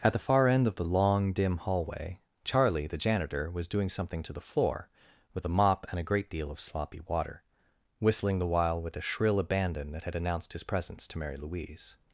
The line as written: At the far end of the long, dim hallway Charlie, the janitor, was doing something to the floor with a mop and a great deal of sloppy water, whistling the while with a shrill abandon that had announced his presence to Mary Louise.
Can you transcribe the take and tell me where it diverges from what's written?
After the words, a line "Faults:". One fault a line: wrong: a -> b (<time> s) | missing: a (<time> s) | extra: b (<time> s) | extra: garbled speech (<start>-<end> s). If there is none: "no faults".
At the far end of the long, dim hallway Charlie, the janitor, was doing something to the floor with a mop and a great deal of sloppy water, whistling the while with a shrill abandon that had announced his presence to Mary Louise.
Faults:
no faults